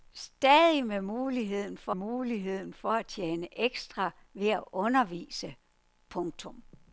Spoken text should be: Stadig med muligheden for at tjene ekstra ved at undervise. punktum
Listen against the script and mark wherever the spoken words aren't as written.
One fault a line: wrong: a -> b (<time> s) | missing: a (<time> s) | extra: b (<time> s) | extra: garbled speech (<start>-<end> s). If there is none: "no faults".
extra: muligheden for (1.9 s)